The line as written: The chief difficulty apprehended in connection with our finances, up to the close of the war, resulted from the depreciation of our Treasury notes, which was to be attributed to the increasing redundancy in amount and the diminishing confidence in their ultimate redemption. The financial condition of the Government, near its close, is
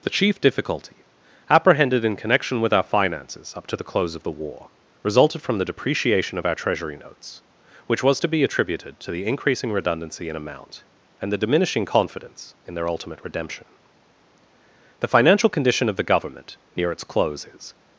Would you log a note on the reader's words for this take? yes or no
no